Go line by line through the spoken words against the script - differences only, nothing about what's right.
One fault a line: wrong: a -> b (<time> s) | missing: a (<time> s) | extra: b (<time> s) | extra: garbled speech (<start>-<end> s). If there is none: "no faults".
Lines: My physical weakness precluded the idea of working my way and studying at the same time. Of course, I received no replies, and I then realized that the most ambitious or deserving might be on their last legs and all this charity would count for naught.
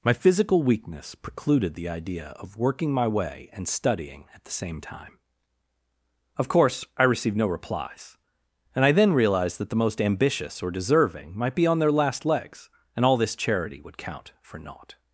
no faults